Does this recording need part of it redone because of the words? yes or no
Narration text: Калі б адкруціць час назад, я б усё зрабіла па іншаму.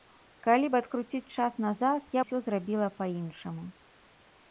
yes